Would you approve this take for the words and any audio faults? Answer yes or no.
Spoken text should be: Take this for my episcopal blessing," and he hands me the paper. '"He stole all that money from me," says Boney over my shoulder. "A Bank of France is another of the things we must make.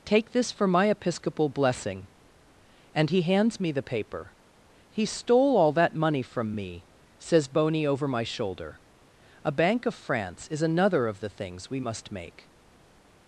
yes